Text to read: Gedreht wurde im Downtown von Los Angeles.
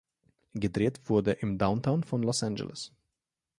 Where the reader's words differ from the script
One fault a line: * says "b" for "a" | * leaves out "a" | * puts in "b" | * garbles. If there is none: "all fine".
all fine